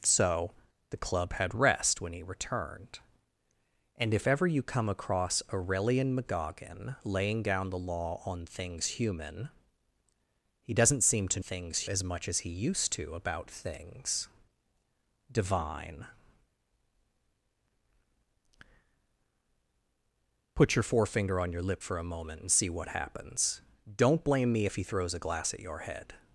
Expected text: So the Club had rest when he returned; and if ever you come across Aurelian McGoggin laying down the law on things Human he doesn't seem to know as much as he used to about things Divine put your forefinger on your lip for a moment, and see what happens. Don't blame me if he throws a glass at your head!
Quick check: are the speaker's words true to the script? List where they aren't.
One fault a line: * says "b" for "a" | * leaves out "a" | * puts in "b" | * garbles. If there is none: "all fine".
* says "things" for "know"